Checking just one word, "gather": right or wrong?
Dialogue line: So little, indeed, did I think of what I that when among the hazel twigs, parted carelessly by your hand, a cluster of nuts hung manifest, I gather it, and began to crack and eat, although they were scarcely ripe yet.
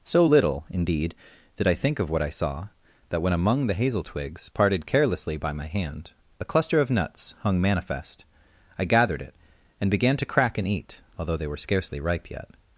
wrong